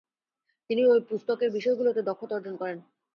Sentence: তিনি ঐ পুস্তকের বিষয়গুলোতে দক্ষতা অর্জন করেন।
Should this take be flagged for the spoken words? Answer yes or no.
no